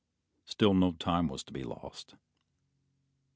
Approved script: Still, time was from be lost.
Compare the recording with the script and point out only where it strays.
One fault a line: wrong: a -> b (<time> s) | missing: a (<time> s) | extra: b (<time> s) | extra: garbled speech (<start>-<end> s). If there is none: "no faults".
extra: no (0.7 s)
wrong: from -> to (1.4 s)